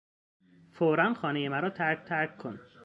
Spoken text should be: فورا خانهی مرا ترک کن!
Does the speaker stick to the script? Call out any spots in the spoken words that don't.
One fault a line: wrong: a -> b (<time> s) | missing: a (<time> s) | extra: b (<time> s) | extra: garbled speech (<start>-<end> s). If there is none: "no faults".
extra: ترک (2.0 s)